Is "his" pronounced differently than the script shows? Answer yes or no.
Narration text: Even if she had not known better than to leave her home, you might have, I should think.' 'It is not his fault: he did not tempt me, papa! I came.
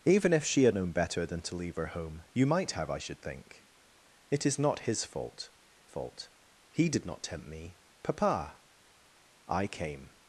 no